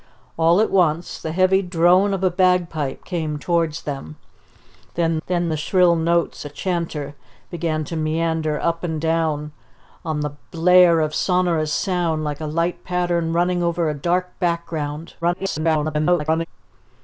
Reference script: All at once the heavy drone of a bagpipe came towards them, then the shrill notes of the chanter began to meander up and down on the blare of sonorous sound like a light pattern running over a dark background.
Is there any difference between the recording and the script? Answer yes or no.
yes